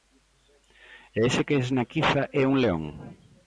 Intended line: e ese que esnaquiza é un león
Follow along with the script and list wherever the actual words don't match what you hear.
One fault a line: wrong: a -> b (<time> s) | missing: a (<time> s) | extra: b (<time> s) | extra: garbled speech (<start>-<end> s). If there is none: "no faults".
no faults